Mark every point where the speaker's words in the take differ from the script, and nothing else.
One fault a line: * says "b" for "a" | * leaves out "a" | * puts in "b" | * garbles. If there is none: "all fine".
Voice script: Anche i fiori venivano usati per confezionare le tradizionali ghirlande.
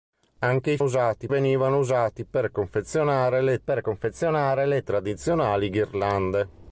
* says "usati" for "fiori"
* puts in "per confezionare le"